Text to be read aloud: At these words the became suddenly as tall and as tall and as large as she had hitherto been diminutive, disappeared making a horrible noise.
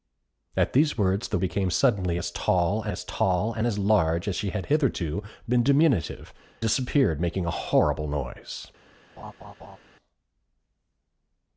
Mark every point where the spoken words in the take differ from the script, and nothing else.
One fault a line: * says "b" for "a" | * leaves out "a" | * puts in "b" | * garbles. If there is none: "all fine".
all fine